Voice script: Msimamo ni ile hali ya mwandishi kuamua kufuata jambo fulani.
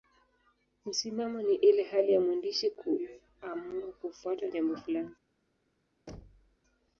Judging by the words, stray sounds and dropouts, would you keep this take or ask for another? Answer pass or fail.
fail